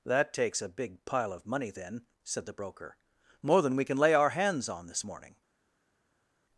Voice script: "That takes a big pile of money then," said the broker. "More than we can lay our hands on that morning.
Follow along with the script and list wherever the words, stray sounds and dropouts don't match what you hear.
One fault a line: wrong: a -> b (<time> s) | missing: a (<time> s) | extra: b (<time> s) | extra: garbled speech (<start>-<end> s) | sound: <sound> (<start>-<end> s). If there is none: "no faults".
wrong: that -> this (4.9 s)